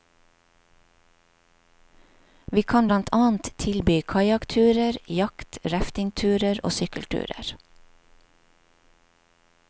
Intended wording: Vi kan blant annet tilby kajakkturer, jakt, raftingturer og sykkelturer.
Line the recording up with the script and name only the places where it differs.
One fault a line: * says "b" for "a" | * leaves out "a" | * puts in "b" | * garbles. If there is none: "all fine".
all fine